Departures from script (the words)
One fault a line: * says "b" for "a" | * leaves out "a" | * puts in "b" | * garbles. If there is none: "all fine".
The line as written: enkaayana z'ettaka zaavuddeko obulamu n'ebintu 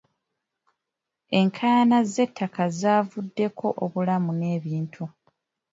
all fine